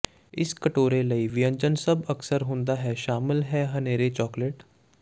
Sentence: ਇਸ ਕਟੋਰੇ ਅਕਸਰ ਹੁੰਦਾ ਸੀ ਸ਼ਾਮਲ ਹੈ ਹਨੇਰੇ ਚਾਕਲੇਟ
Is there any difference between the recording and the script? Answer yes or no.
yes